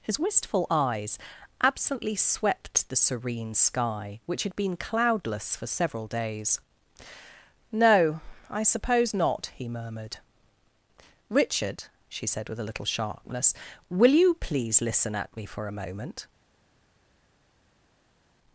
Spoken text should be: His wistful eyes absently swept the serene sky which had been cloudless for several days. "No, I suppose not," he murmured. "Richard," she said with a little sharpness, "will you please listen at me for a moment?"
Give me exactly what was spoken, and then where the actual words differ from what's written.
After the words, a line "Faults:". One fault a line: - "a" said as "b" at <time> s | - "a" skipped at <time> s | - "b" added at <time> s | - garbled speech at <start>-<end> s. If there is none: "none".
His wistful eyes absently swept the serene sky which had been cloudless for several days. "No, I suppose not," he murmured. "Richard," she said with a little sharpness, "will you please listen at me for a moment?"
Faults:
none